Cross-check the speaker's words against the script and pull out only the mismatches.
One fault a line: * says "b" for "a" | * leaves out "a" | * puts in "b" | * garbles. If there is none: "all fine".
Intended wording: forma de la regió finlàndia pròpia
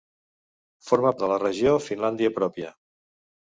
all fine